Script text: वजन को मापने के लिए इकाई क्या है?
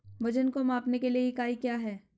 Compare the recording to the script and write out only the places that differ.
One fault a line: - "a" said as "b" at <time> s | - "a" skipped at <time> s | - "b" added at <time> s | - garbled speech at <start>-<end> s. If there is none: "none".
none